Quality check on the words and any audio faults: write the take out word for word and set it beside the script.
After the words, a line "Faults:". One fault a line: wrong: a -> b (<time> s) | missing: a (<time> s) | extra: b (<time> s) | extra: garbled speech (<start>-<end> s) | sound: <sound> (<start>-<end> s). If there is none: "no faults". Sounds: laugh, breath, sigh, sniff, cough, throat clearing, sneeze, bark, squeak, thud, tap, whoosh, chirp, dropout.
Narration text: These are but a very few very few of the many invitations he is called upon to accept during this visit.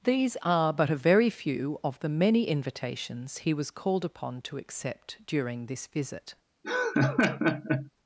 These are but a very few of the many invitations he was called upon to accept during this visit.
Faults:
missing: very few (1.8 s)
wrong: is -> was (3.5 s)
sound: laugh (6.6-7.9 s)